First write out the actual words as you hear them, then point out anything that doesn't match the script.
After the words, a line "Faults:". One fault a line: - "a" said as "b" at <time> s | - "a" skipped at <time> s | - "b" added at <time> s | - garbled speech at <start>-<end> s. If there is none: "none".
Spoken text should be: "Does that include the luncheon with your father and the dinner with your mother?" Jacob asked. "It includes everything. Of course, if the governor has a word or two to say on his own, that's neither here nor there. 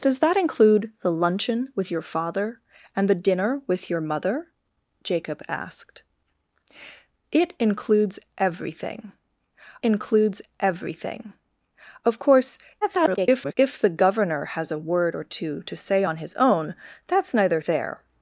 "Does that include the luncheon with your father and the dinner with your mother?" Jacob asked. "It includes everything includes everything. Of course, [garbled] if the governor has a word or two to say on his own, that's neither there.
Faults:
- "includes everything" added at 9.8 s
- garbled speech at 12.8-13.5 s
- "here nor" skipped at 17.6 s